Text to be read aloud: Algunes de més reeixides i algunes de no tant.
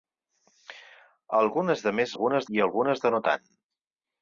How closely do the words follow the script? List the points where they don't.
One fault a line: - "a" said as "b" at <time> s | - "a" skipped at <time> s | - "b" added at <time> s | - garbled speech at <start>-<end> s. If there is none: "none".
- "reeixides" said as "algunes" at 2.1 s